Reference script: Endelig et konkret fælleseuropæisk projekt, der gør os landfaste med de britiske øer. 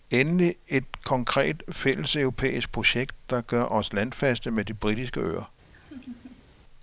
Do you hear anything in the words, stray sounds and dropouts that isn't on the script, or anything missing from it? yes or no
yes